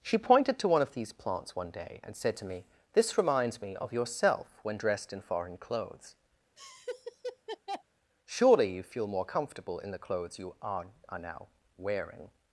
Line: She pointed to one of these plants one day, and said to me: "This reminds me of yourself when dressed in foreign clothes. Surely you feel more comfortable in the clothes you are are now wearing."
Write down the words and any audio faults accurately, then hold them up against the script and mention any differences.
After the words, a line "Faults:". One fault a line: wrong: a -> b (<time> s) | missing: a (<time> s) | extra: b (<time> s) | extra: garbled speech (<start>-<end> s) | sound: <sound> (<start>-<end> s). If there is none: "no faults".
She pointed to one of these plants one day, and said to me: "This reminds me of yourself when dressed in foreign clothes. Surely you feel more comfortable in the clothes you are are now wearing."
Faults:
sound: laugh (6.6-7.8 s)